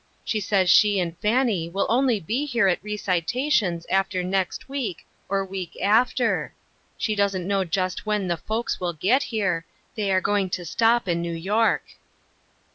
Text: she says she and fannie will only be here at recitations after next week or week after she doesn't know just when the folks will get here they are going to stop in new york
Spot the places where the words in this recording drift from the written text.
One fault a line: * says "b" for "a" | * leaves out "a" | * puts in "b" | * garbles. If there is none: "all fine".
all fine